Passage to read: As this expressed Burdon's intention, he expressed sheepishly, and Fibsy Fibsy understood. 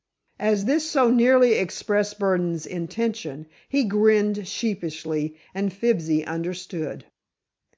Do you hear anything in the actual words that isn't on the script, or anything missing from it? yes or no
yes